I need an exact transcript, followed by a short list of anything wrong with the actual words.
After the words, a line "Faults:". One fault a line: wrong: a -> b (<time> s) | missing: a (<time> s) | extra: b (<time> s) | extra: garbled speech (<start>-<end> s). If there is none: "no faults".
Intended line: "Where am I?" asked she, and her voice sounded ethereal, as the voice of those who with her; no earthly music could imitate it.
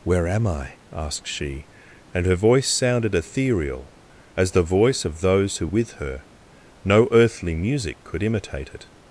"Where am I?" asked she, and her voice sounded ethereal, as the voice of those who with her; no earthly music could imitate it.
Faults:
no faults